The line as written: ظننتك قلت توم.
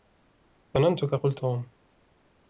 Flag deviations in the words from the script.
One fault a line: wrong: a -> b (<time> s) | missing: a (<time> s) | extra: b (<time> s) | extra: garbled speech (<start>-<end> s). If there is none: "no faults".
no faults